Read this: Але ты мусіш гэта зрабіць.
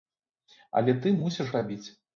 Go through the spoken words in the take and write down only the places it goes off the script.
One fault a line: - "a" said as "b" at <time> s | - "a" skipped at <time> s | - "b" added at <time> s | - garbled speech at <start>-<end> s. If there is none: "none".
- "гэта" skipped at 1.5 s